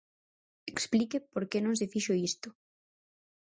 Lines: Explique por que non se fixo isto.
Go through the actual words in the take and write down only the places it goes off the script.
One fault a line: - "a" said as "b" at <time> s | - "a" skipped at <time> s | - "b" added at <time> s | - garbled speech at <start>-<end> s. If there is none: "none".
none